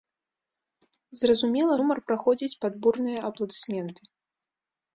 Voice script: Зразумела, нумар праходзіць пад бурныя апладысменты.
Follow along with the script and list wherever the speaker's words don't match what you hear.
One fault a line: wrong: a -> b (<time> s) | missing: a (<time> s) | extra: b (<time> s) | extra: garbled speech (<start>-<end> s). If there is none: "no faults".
no faults